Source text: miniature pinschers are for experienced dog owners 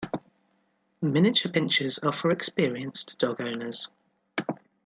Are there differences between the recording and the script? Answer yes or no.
no